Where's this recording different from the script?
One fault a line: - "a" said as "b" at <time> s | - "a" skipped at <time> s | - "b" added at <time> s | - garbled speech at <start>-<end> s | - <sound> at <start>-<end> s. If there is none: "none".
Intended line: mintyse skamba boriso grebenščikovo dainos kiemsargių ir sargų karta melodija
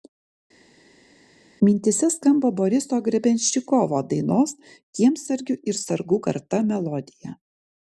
none